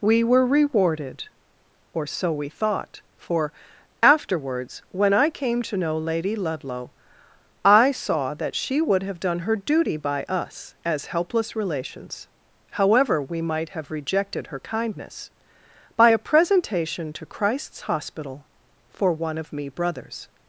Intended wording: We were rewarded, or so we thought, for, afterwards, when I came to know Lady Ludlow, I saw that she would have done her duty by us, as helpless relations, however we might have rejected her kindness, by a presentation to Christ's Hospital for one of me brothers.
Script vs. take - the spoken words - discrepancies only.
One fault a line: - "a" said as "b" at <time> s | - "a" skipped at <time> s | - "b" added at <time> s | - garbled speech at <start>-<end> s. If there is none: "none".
none